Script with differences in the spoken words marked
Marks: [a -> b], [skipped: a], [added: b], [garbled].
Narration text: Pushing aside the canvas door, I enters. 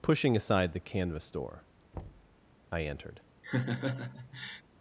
Pushing aside the canvas door, I [enters. -> entered]